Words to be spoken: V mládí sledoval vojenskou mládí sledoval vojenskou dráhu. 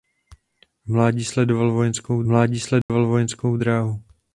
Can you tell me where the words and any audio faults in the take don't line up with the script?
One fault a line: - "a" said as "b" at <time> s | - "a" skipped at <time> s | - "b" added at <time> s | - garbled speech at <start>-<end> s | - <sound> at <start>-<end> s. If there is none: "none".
- dropout at 2.8-2.9 s